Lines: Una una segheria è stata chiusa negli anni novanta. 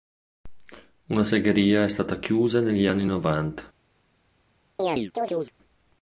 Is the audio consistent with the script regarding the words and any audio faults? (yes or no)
no